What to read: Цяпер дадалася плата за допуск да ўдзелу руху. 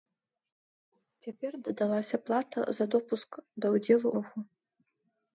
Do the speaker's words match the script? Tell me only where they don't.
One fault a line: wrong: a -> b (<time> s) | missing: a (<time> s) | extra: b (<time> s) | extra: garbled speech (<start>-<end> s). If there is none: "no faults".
no faults